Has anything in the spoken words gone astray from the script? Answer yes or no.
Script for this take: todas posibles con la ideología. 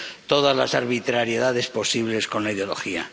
yes